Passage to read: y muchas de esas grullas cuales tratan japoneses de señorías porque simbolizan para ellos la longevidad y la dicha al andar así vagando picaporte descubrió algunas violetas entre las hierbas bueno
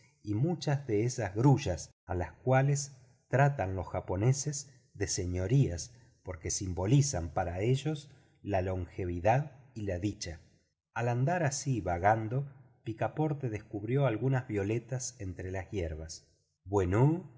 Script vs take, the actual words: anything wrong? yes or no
yes